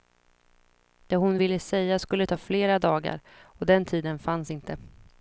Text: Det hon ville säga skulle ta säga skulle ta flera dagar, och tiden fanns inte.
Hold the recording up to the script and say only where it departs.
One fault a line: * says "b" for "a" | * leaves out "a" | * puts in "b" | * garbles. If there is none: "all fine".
* leaves out "säga skulle ta"
* puts in "den"